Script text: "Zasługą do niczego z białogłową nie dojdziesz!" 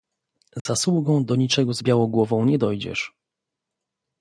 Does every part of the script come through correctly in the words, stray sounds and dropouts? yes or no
no